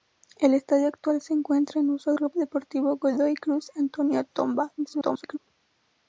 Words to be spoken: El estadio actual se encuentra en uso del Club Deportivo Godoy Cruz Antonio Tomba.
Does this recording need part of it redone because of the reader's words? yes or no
yes